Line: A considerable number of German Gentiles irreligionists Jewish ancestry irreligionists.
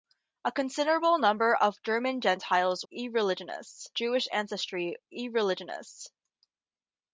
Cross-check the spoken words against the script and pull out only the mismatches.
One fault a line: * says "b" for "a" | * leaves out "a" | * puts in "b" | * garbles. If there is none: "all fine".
all fine